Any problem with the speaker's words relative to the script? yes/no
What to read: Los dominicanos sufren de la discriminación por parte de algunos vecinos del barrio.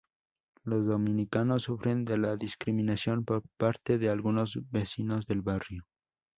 no